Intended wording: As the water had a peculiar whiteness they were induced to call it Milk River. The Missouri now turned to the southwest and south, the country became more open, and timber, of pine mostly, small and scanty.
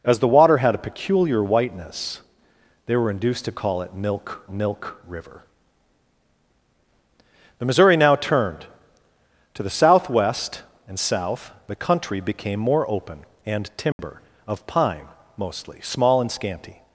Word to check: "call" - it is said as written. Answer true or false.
true